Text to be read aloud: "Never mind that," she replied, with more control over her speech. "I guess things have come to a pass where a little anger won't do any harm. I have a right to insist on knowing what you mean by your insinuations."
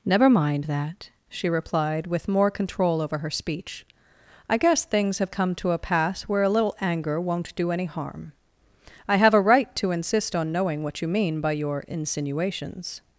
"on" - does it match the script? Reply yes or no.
yes